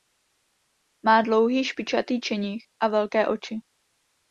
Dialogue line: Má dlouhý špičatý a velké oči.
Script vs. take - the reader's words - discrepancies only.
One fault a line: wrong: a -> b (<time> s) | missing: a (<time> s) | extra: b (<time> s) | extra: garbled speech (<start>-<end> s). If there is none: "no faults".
extra: čenich (2.2 s)